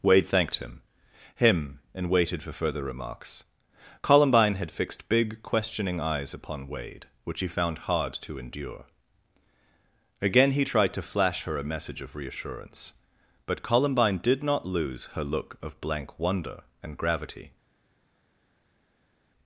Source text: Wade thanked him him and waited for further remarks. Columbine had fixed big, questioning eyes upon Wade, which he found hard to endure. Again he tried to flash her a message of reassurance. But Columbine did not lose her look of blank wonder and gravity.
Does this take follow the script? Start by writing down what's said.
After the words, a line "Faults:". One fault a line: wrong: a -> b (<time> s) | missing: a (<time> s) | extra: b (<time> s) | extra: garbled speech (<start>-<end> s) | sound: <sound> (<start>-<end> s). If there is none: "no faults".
Wade thanked him him and waited for further remarks. Columbine had fixed big, questioning eyes upon Wade, which he found hard to endure. Again he tried to flash her a message of reassurance. But Columbine did not lose her look of blank wonder and gravity.
Faults:
no faults